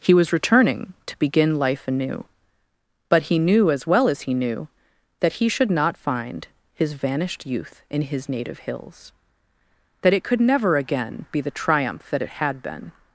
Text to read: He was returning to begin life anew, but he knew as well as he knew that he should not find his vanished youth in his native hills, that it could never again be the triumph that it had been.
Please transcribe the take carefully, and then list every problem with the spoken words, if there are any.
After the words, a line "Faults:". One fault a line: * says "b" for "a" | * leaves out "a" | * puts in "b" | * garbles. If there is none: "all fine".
He was returning to begin life anew, but he knew as well as he knew that he should not find his vanished youth in his native hills, that it could never again be the triumph that it had been.
Faults:
all fine